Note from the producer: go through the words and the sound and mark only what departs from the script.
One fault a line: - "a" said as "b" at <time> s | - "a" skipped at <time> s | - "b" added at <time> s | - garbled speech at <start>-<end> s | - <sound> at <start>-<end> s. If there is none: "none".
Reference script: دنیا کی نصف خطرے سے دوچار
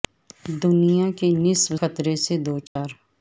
- dropout at 2.7-2.8 s